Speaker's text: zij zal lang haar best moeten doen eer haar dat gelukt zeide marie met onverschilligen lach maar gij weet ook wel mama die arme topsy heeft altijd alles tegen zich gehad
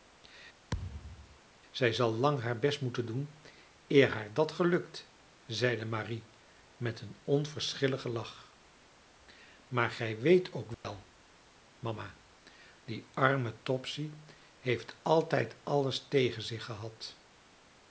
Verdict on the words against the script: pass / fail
fail